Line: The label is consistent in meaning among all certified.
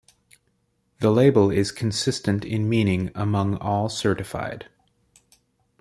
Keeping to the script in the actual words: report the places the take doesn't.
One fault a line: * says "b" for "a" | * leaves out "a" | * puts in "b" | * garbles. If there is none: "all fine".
all fine